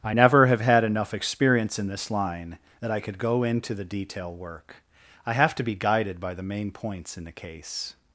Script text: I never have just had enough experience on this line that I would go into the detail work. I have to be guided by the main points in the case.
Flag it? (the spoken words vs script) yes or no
yes